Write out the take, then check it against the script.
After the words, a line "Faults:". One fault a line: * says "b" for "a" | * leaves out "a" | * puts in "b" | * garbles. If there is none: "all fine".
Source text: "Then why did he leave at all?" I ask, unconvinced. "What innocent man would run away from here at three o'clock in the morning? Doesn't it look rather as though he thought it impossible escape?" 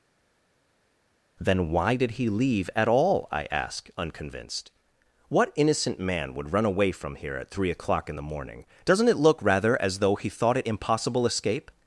"Then why did he leave at all?" I ask, unconvinced. "What innocent man would run away from here at three o'clock in the morning? Doesn't it look rather as though he thought it impossible escape?"
Faults:
all fine